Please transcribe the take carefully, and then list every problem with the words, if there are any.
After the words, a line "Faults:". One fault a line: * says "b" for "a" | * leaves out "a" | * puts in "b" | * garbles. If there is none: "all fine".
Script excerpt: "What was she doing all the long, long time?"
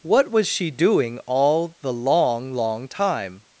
"What was she doing all the long, long time?"
Faults:
all fine